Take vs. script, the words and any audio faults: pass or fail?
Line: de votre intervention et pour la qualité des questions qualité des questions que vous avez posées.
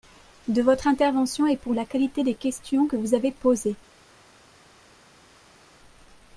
fail